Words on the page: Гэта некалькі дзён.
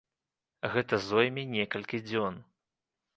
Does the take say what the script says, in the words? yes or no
no